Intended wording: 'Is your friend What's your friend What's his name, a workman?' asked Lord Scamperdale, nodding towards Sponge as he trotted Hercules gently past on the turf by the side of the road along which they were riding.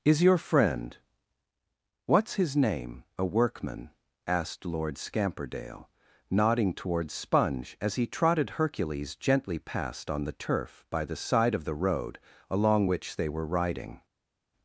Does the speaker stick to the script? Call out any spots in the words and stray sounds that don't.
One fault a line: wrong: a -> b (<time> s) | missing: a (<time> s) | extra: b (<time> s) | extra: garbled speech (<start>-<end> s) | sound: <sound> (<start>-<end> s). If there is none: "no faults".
missing: your friend What's (2.3 s)